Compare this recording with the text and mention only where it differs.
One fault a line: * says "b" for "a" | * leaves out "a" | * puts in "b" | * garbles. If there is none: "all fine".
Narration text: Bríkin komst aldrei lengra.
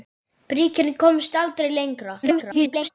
* garbles